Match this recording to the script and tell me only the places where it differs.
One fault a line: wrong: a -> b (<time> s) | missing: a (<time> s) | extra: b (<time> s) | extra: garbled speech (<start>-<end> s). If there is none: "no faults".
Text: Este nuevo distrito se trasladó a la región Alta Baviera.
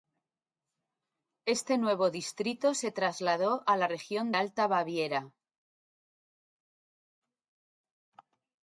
no faults